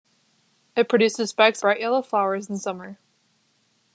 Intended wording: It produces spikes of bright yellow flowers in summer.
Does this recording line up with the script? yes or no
no